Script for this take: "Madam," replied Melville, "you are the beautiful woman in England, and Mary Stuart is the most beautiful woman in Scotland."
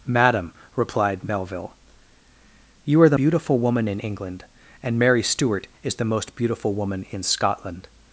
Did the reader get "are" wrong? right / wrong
right